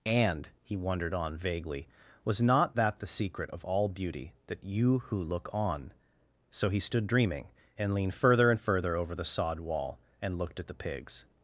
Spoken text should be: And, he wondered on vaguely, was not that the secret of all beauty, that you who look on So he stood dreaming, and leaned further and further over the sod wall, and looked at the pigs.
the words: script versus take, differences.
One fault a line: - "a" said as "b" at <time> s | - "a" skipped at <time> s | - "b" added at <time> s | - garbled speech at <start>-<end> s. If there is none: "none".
none